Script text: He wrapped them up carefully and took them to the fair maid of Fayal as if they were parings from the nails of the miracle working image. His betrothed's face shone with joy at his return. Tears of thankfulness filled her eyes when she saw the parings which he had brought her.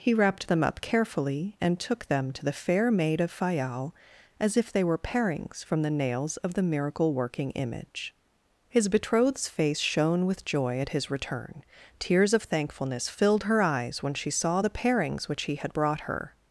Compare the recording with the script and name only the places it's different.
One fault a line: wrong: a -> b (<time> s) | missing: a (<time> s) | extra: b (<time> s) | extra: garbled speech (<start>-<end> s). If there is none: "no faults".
no faults